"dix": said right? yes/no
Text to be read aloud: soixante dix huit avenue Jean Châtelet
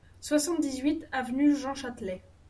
yes